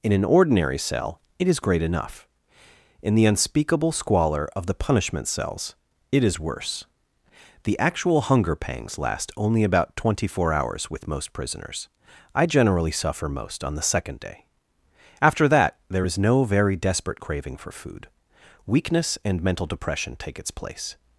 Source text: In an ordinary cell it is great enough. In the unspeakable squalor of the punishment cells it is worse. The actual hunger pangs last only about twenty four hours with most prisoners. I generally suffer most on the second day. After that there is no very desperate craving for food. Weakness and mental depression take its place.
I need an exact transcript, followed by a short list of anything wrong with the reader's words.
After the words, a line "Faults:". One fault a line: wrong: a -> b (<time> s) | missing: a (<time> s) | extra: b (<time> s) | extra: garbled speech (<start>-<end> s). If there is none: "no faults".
In an ordinary cell it is great enough. In the unspeakable squalor of the punishment cells it is worse. The actual hunger pangs last only about twenty four hours with most prisoners. I generally suffer most on the second day. After that there is no very desperate craving for food. Weakness and mental depression take its place.
Faults:
no faults